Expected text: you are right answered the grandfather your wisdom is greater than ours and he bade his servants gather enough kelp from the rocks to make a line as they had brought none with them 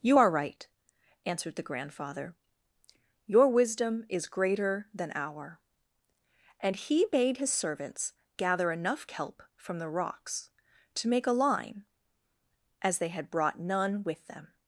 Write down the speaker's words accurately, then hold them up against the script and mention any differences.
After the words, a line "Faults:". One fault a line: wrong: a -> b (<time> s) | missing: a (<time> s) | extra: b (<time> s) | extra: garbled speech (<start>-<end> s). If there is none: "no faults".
you are right answered the grandfather your wisdom is greater than our and he bade his servants gather enough kelp from the rocks to make a line as they had brought none with them
Faults:
wrong: ours -> our (5.1 s)